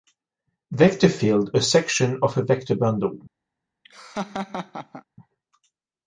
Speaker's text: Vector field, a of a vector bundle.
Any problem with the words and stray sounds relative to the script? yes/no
yes